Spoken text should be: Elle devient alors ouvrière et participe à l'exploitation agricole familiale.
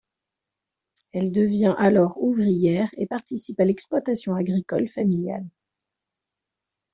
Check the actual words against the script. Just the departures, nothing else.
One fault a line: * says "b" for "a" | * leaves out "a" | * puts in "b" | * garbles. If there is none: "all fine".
all fine